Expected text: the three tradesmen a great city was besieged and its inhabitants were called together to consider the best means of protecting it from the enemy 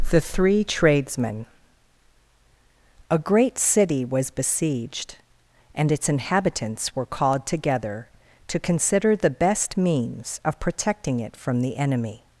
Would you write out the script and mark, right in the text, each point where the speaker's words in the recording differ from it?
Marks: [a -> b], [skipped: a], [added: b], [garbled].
the three tradesmen a great city was besieged and its inhabitants were called together to consider the best means of protecting it from the enemy